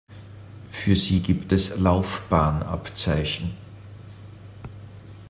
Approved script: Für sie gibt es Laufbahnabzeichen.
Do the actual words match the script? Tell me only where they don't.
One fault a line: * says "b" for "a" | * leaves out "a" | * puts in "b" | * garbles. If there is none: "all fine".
all fine